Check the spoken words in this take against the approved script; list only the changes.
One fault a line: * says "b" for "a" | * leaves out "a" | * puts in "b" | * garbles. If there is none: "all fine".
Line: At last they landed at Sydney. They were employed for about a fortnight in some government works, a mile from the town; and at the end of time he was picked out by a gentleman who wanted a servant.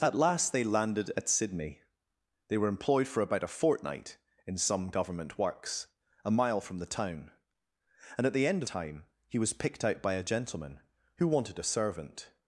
all fine